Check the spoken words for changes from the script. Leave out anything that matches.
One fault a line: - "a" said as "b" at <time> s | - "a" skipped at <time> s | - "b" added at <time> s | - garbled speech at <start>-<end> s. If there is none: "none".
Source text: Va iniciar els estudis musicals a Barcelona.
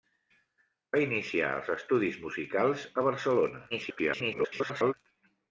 - garbled speech at 3.7-4.9 s